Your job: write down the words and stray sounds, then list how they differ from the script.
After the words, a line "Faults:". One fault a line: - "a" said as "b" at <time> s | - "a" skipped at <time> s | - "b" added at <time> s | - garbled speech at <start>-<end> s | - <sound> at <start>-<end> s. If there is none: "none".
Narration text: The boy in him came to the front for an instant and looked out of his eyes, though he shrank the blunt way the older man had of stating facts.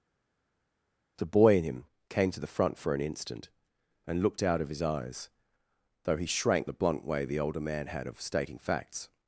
The boy in him came to the front for an instant and looked out of his eyes, though he shrank the blunt way the older man had of stating facts.
Faults:
none